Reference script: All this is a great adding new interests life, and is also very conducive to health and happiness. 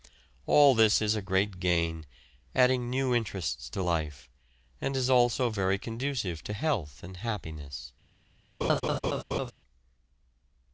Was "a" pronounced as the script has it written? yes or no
yes